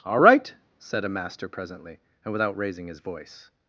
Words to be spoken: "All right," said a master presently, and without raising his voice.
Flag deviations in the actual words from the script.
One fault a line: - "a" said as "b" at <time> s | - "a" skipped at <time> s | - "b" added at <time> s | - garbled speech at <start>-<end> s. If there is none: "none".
none